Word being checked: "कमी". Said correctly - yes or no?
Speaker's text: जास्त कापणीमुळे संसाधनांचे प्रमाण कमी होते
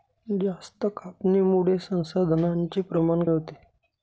no